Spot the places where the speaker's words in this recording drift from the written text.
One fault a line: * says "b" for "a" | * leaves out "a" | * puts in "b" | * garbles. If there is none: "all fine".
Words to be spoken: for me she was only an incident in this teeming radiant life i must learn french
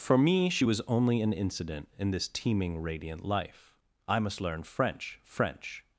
* puts in "french"